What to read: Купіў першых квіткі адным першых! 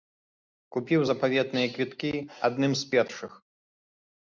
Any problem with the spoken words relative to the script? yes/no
yes